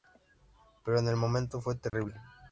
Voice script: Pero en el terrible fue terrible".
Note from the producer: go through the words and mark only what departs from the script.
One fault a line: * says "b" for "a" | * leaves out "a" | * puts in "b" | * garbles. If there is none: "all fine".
* says "momento" for "terrible"